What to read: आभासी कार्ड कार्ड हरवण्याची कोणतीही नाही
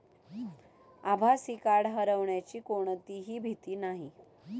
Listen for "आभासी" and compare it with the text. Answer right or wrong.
right